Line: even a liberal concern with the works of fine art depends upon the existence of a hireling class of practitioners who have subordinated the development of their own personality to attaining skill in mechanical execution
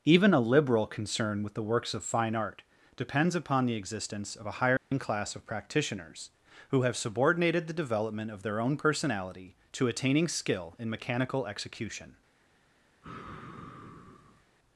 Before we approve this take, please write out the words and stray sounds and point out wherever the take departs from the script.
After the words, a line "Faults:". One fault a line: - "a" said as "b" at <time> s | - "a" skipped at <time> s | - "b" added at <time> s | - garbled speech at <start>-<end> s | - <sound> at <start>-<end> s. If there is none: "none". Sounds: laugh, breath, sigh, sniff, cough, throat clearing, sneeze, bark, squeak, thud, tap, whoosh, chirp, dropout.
even a liberal concern with the works of fine art depends upon the existence of a hireling class of practitioners who have subordinated the development of their own personality to attaining skill in mechanical execution
Faults:
- dropout at 4.8-4.9 s
- sigh at 13.0-14.4 s